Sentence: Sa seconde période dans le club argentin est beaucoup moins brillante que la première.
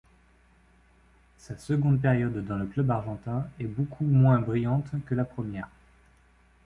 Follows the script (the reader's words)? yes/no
yes